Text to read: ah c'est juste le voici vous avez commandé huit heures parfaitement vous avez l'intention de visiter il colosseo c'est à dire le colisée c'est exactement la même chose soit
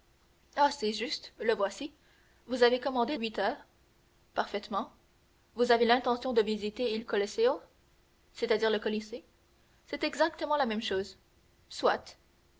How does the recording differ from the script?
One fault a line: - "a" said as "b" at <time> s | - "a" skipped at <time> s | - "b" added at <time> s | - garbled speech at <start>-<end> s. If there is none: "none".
none